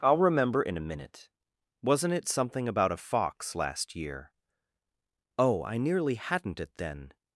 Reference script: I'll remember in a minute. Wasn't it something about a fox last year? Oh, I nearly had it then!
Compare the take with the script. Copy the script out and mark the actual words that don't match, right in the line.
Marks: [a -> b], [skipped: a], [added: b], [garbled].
I'll remember in a minute. Wasn't it something about a fox last year? Oh, I nearly [had -> hadn't] it then!